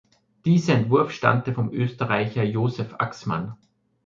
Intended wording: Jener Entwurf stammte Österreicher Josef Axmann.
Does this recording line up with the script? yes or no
no